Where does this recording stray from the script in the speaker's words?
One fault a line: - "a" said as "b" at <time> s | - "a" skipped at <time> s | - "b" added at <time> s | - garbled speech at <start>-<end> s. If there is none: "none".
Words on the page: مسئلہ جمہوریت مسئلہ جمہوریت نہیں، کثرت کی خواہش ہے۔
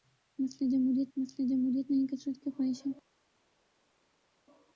none